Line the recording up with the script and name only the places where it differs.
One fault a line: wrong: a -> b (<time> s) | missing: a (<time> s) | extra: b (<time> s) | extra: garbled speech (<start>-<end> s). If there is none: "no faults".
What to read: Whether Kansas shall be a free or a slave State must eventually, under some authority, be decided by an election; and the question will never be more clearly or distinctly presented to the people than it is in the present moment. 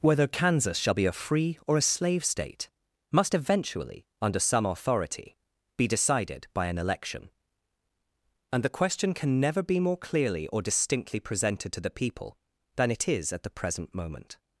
wrong: will -> can (9.1 s)
wrong: in -> at (13.3 s)